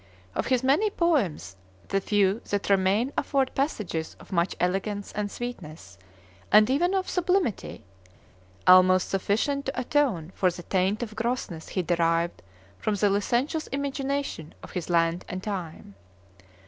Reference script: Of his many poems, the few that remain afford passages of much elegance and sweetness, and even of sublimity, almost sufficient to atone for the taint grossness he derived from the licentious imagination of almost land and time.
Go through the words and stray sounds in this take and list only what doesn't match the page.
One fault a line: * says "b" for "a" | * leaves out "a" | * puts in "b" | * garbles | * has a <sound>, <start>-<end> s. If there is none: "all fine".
* puts in "of"
* says "his" for "almost"